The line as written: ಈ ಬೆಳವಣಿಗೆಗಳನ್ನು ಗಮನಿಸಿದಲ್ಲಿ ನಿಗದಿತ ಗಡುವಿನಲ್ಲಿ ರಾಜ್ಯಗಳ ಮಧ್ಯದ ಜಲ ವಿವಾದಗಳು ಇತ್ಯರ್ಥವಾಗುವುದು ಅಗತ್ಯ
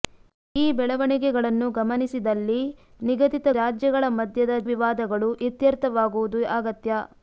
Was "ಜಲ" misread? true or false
true